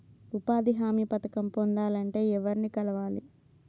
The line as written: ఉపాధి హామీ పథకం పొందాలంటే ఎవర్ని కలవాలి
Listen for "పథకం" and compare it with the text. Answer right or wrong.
right